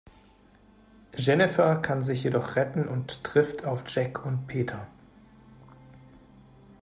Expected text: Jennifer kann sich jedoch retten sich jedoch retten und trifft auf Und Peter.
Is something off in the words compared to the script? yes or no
yes